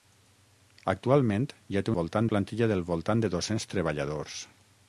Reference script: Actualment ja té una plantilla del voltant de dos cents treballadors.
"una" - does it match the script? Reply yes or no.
no